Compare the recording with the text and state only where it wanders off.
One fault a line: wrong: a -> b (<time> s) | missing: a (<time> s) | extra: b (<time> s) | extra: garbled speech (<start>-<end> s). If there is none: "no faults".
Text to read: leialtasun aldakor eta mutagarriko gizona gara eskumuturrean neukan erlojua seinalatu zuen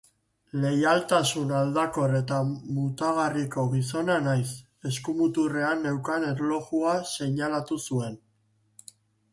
wrong: gara -> naiz (4.3 s)